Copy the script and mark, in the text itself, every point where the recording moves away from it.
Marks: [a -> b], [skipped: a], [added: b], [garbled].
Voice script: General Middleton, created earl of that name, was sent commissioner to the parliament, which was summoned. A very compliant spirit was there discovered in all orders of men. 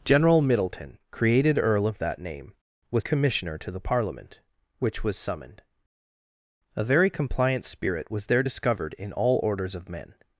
General Middleton, created earl of that name, was [skipped: sent] commissioner to the parliament, which was summoned. A very compliant spirit was there discovered in all orders of men.